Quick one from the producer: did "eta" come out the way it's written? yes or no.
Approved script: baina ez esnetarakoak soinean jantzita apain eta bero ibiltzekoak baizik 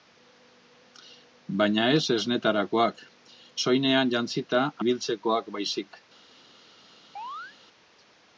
no